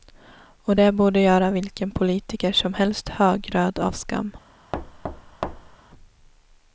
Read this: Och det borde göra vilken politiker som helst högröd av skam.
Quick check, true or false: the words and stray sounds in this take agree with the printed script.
false